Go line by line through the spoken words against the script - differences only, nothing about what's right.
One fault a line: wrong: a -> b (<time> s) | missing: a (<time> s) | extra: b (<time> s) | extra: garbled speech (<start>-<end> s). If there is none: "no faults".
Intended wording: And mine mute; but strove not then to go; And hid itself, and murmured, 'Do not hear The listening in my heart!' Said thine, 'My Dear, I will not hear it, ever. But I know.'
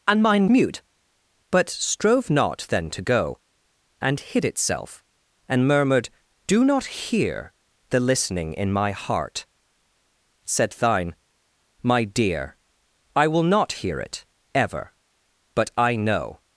no faults